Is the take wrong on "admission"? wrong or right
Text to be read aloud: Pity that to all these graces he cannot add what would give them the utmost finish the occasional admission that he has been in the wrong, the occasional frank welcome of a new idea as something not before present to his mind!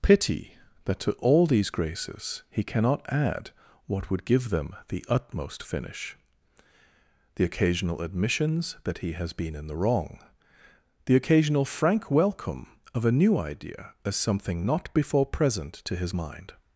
wrong